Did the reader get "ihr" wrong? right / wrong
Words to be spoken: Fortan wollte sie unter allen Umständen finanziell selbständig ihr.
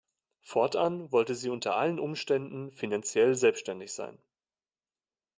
wrong